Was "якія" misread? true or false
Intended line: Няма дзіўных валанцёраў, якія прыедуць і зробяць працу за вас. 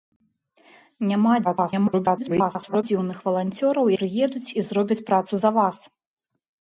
true